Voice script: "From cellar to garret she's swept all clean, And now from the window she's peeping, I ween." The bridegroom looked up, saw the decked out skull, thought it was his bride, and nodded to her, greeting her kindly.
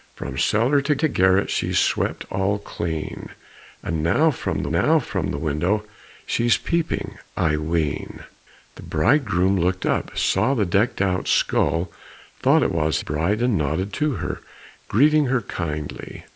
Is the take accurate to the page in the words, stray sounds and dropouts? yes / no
no